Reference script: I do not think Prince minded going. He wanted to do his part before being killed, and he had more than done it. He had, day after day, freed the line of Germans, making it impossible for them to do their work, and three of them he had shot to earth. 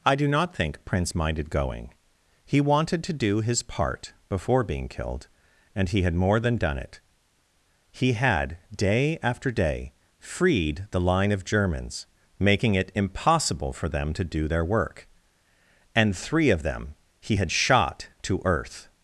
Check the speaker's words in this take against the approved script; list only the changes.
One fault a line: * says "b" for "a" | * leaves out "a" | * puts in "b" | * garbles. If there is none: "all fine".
all fine